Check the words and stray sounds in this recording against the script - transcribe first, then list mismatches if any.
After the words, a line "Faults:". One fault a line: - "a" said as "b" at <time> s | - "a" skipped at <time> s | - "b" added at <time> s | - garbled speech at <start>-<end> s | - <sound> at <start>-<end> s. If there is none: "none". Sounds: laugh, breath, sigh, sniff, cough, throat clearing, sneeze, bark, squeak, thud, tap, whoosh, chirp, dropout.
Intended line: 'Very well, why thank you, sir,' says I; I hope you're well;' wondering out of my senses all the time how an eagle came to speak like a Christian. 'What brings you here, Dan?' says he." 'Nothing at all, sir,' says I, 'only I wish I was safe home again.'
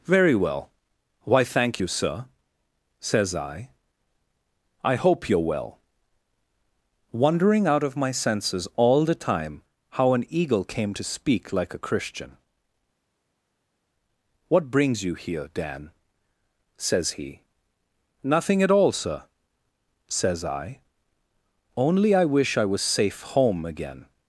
'Very well, why thank you, sir,' says I; I hope you're well;' wondering out of my senses all the time how an eagle came to speak like a Christian. 'What brings you here, Dan?' says he." 'Nothing at all, sir,' says I, 'only I wish I was safe home again.'
Faults:
none